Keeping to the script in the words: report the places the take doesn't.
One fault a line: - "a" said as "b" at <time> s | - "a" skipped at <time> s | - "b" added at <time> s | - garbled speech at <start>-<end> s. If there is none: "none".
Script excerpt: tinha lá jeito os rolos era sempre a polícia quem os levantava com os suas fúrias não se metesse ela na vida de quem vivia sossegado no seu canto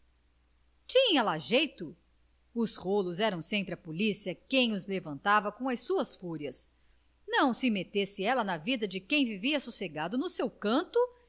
- "os" said as "as" at 5.7 s